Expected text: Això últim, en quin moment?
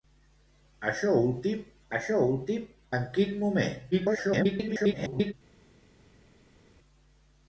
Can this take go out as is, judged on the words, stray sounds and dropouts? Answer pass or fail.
fail